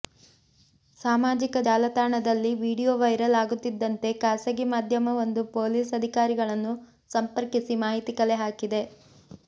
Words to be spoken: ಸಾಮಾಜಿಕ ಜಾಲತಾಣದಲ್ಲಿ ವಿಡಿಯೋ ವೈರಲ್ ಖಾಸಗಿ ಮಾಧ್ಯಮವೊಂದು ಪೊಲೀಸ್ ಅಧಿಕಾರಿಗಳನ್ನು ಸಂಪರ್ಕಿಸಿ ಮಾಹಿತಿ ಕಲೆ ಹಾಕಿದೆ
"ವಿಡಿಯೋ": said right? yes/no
yes